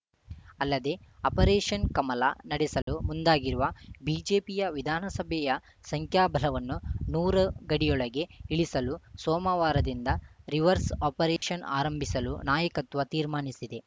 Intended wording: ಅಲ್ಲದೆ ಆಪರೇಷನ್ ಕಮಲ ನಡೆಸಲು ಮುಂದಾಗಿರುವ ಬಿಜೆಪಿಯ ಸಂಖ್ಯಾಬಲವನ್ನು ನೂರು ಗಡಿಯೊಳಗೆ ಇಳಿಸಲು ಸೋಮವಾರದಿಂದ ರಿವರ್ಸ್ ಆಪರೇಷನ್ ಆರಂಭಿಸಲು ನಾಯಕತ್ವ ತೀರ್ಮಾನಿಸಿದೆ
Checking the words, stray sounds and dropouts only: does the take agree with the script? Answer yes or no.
no